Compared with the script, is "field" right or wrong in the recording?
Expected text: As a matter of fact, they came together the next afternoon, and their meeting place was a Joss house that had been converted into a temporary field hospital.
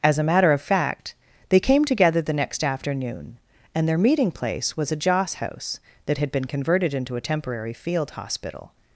right